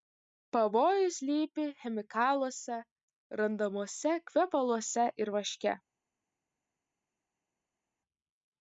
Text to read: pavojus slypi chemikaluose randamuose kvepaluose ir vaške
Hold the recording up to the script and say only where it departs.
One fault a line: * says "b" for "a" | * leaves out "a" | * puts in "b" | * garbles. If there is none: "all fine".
all fine